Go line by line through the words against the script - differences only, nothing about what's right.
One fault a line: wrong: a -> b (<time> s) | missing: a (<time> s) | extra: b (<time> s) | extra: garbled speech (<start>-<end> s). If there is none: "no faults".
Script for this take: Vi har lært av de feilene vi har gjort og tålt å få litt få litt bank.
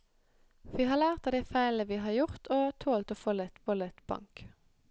no faults